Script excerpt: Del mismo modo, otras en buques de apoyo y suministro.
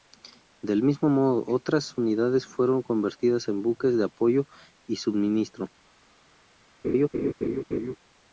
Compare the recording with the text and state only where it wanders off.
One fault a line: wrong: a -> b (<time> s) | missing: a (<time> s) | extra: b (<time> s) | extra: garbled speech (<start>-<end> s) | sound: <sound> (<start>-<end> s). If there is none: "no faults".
extra: unidades fueron convertidas (2.0 s)
sound: laugh (6.8-8.0 s)